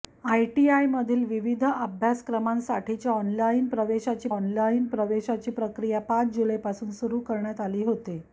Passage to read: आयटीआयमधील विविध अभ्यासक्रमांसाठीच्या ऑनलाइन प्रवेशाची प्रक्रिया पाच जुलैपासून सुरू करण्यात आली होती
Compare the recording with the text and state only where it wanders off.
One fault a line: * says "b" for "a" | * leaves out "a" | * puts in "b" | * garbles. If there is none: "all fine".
* puts in "ऑनलाइन प्रवेशाची"